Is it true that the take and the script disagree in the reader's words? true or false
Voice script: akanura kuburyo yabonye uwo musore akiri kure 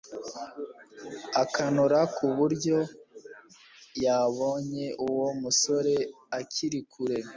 false